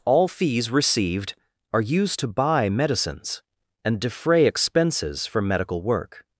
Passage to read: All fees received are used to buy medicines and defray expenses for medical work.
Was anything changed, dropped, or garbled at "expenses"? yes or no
no